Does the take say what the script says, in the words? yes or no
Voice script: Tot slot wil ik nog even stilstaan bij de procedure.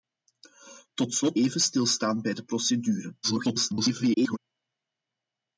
no